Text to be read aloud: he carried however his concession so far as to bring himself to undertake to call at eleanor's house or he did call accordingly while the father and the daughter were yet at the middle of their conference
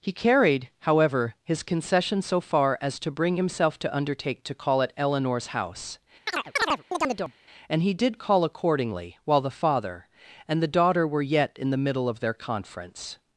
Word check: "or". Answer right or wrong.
wrong